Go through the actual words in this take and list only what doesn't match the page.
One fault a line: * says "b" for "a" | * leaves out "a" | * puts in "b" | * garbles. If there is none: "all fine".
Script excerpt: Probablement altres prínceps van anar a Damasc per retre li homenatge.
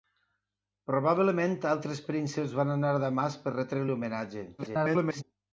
* garbles